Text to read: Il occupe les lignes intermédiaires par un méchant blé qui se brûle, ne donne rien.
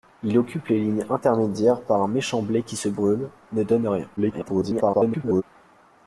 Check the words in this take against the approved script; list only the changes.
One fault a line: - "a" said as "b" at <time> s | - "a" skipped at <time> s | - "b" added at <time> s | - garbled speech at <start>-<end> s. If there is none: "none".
- garbled speech at 4.2-5.4 s